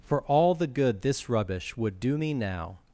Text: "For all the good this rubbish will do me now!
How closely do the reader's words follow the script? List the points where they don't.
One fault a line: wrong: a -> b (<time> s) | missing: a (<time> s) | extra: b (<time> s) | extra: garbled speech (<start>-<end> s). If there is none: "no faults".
wrong: will -> would (1.8 s)